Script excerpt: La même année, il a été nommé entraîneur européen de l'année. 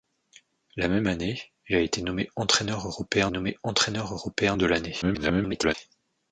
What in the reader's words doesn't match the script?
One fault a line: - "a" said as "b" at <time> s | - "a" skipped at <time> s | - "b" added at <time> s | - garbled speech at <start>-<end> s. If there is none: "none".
- "nommé entraîneur européen" added at 3.3 s
- garbled speech at 5.0-5.7 s